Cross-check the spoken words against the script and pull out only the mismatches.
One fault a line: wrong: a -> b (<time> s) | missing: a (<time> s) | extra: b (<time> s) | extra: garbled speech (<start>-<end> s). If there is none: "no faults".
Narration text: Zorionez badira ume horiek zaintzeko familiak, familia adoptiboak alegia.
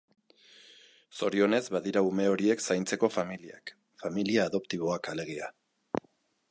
no faults